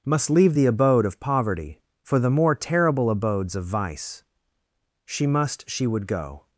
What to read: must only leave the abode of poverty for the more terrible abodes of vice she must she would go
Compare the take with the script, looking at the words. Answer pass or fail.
fail